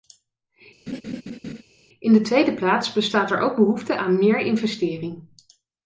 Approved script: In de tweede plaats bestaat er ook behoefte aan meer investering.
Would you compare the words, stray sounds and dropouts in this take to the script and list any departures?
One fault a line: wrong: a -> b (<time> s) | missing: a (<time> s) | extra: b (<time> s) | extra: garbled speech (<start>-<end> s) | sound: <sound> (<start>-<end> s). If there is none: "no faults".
sound: laugh (0.9-1.6 s)